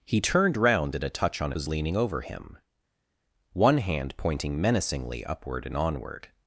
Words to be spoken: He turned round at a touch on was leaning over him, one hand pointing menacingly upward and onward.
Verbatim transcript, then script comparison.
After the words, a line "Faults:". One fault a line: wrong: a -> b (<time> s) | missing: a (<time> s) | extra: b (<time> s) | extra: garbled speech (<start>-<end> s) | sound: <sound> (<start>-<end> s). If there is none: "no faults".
He turned round at a touch on was leaning over him, one hand pointing menacingly upward and onward.
Faults:
no faults